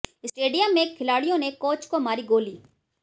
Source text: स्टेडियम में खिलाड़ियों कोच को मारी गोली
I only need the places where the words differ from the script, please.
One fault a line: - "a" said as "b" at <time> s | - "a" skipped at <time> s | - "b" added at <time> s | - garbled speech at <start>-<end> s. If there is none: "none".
- "ने" added at 1.4 s